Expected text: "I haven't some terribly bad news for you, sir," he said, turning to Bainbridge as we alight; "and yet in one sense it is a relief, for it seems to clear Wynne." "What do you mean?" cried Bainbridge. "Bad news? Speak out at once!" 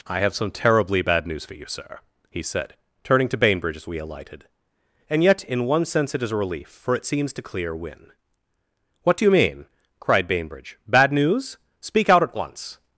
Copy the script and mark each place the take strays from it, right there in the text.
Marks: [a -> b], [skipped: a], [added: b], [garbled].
"I [haven't -> have] some terribly bad news for you, sir," he said, turning to Bainbridge as we [alight; -> alighted] "and yet in one sense it is a relief, for it seems to clear Wynne." "What do you mean?" cried Bainbridge. "Bad news? Speak out at once!"